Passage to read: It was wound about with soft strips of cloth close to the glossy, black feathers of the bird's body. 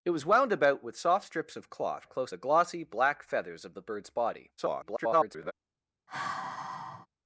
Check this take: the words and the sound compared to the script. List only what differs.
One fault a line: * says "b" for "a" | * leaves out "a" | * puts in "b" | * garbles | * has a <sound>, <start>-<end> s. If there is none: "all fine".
* leaves out "to"
* garbles
* has a sigh, 6.1-7.1 s